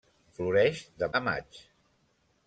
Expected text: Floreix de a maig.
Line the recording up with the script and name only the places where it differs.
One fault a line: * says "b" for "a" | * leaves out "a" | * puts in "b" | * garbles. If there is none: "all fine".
all fine